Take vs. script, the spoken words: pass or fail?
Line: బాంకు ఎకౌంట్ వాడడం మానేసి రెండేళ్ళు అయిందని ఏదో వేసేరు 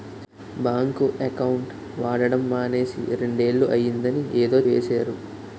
pass